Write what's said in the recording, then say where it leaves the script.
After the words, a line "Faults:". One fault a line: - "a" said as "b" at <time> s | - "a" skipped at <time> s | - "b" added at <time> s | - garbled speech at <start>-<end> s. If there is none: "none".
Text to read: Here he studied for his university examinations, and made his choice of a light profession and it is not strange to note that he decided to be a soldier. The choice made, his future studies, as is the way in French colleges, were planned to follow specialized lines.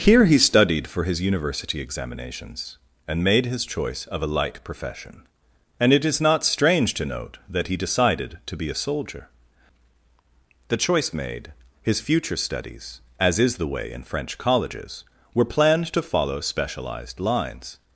Here he studied for his university examinations, and made his choice of a light profession and it is not strange to note that he decided to be a soldier. The choice made, his future studies, as is the way in French colleges, were planned to follow specialized lines.
Faults:
none